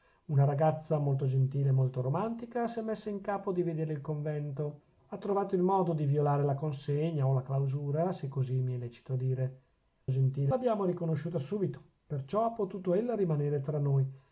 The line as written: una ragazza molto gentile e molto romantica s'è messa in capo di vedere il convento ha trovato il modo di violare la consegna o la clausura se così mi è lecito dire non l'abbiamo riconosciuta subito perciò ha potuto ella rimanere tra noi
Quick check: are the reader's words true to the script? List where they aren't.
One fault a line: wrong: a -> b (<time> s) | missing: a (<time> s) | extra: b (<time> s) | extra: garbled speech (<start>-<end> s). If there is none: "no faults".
wrong: non -> gentile (10.1 s)